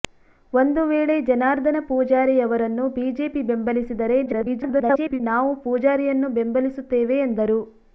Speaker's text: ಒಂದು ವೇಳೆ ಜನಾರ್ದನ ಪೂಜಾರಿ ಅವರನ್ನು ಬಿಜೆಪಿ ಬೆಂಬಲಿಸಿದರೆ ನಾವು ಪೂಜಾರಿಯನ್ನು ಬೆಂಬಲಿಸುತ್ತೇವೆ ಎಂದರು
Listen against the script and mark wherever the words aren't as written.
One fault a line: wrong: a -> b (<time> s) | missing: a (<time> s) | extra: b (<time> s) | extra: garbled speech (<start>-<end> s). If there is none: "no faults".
extra: garbled speech (4.3-5.2 s)